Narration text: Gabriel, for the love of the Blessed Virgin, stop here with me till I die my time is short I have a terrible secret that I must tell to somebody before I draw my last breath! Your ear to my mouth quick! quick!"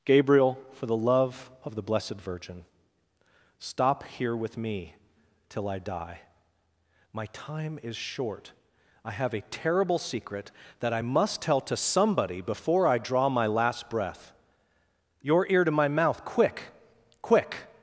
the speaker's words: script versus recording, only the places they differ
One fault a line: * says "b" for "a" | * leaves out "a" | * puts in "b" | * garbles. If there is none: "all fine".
all fine